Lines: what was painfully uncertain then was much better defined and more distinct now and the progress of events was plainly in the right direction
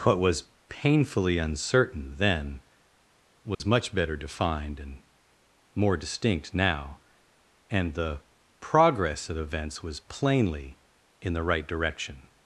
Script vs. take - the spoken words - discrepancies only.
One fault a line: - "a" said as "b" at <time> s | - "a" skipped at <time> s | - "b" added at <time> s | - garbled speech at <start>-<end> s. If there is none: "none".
none